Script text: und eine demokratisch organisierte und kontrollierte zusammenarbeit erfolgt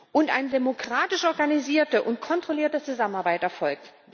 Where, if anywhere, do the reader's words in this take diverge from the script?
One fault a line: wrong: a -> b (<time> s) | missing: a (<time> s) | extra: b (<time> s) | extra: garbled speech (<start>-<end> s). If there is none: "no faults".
no faults